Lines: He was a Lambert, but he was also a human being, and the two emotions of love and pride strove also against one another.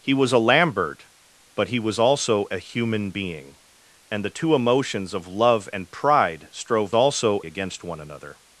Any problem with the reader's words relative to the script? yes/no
no